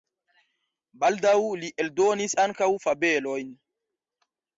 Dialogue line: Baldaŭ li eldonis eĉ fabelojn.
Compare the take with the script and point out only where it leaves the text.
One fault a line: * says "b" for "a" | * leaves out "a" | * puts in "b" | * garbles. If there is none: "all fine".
* says "ankaŭ" for "eĉ"